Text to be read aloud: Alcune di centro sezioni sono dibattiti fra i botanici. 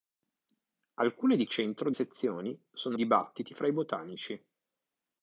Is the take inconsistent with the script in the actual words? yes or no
no